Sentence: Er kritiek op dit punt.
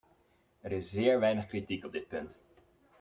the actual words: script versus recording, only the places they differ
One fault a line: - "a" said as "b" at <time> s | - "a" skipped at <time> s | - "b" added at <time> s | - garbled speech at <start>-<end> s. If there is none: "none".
- "is zeer weinig" added at 0.7 s